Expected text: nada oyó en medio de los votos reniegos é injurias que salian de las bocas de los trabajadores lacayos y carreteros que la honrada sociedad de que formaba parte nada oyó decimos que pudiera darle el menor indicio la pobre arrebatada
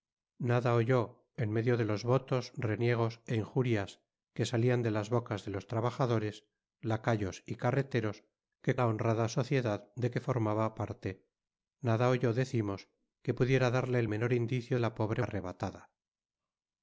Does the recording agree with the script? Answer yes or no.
yes